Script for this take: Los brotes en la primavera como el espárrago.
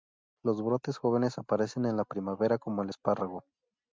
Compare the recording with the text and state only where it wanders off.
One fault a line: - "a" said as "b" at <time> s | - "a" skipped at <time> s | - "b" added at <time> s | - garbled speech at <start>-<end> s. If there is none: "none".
- "jóvenes aparecen" added at 1.0 s